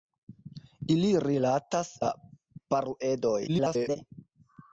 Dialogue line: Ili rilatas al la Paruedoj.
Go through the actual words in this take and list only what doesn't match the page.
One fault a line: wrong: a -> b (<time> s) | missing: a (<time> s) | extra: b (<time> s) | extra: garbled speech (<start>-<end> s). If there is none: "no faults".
missing: al (1.9 s)
extra: garbled speech (3.5-4.0 s)